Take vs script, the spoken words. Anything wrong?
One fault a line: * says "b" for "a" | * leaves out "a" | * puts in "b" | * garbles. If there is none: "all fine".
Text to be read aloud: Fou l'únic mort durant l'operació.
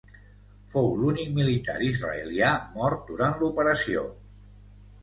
* puts in "militar israelià"